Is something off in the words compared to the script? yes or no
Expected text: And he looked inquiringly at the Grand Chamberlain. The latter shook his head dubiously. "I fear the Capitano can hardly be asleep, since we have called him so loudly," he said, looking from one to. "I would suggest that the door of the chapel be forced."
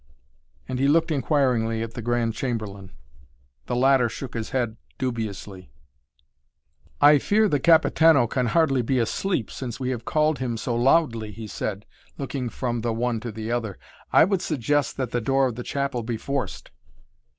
yes